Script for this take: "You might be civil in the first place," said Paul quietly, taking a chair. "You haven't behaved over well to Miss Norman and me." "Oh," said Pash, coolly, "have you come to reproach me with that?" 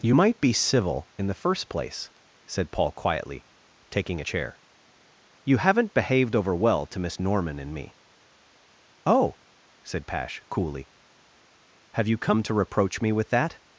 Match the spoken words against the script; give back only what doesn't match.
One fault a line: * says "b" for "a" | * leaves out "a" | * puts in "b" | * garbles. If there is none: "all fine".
all fine